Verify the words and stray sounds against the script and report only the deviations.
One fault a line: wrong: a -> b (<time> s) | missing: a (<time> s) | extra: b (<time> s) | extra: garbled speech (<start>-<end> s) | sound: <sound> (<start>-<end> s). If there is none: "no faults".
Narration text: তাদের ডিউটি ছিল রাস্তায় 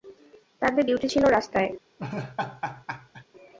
sound: laugh (2.0-3.3 s)